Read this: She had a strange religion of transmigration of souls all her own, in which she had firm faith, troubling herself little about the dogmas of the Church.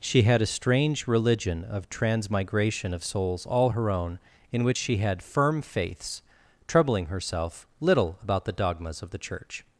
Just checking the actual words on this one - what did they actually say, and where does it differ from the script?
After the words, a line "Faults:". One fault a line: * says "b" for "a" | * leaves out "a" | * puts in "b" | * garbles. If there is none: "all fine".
She had a strange religion of transmigration of souls all her own, in which she had firm faiths, troubling herself little about the dogmas of the Church.
Faults:
* says "faiths" for "faith"